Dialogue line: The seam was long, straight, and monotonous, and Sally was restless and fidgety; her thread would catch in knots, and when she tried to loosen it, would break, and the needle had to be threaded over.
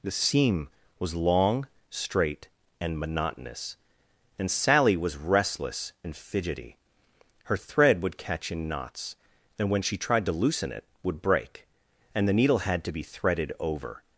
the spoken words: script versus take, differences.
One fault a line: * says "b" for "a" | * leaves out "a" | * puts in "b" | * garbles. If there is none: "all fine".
all fine